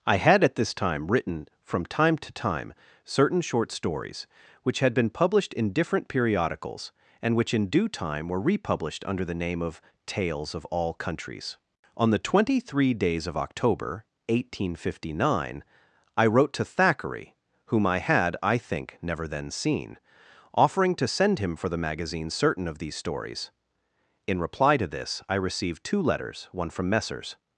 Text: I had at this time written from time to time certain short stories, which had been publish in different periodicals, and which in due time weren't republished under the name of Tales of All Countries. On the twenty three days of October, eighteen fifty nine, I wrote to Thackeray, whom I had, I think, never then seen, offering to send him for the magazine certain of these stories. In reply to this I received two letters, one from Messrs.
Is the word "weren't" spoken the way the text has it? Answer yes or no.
no